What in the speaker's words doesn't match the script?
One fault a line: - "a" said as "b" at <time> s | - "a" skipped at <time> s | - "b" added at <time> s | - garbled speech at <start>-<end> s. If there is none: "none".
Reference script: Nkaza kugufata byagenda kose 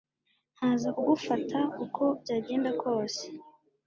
- "uko" added at 1.8 s